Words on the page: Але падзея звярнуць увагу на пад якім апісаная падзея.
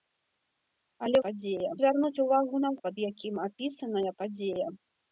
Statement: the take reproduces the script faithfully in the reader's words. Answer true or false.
true